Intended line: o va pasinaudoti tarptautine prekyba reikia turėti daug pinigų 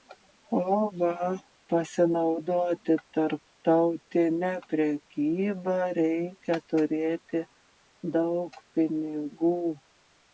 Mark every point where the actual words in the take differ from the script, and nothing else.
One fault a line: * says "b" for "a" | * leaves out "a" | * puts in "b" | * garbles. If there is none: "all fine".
all fine